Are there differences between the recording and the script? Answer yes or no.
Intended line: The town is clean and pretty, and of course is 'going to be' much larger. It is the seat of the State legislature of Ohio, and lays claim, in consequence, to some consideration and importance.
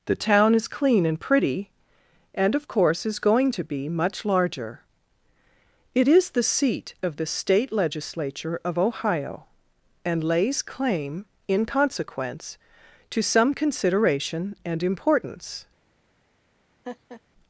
no